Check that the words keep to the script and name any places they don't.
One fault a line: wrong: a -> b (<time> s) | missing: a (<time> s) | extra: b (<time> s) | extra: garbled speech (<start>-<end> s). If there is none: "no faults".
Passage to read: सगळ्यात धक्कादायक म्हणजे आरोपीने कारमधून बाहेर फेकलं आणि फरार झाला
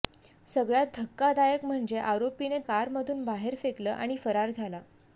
no faults